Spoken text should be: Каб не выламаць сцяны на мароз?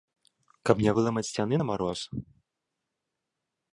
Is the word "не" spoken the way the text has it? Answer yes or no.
yes